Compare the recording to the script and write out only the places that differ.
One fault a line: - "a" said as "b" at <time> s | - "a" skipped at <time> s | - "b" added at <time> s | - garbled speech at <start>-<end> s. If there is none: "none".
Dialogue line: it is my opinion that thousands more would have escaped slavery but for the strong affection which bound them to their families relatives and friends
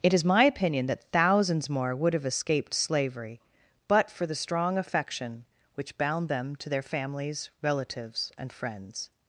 none